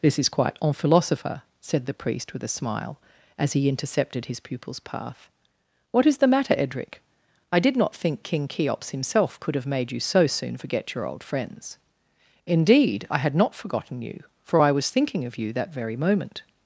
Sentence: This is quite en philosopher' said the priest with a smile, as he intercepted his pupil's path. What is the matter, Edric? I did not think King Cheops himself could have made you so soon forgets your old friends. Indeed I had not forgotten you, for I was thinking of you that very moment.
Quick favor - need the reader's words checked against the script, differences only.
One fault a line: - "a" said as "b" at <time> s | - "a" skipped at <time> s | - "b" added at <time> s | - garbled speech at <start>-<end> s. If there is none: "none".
- "forgets" said as "forget" at 10.5 s